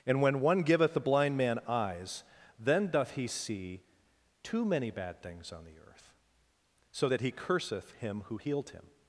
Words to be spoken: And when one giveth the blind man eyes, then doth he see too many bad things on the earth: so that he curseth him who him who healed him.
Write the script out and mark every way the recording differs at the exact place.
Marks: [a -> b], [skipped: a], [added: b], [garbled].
And when one giveth the blind man eyes, then doth he see too many bad things on the earth: so that he curseth him who [skipped: him who] healed him.